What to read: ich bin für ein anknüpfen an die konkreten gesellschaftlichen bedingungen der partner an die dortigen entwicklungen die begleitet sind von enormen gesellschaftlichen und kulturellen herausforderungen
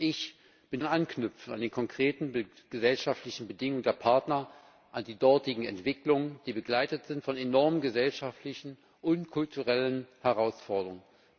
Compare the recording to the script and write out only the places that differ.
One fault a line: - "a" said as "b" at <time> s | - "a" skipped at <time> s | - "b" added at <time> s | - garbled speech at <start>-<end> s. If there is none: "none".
- "für" skipped at 0.8 s